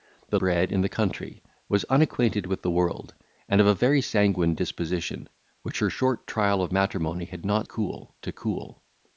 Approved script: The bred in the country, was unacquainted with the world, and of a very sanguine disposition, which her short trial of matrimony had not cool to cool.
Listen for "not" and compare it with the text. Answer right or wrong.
right